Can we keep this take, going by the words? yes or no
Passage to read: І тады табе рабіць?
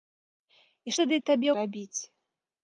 yes